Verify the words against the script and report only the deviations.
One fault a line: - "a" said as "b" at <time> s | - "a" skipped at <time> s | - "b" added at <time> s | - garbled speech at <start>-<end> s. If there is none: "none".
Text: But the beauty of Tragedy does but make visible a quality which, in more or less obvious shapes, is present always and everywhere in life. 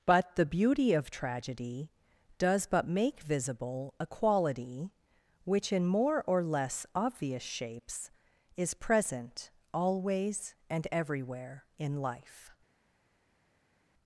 none